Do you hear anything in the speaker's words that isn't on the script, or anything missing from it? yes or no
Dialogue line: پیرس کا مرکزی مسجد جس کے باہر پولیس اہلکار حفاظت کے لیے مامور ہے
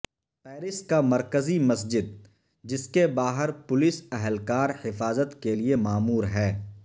no